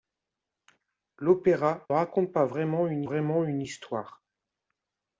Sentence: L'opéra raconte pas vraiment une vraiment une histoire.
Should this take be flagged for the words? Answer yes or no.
no